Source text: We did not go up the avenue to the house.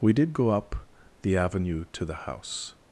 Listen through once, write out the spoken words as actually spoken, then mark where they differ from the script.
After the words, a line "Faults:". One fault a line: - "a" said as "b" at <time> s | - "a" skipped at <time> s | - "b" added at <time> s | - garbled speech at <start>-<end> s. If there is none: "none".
We did go up the avenue to the house.
Faults:
- "not" skipped at 0.3 s